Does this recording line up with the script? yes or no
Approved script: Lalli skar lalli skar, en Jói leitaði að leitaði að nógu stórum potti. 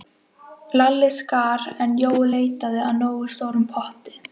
no